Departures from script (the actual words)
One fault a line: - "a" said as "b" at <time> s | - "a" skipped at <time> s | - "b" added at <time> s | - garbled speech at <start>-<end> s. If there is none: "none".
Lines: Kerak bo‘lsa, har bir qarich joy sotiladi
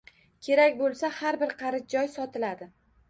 none